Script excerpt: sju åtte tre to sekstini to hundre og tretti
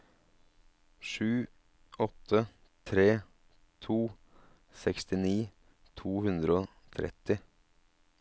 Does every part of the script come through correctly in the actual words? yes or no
yes